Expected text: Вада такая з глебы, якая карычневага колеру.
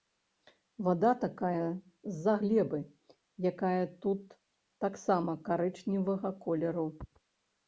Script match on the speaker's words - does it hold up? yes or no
no